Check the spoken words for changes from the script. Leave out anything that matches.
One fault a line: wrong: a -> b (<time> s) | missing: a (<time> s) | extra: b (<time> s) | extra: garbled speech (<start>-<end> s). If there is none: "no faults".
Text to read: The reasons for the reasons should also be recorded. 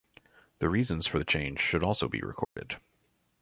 wrong: reasons -> change (1.2 s)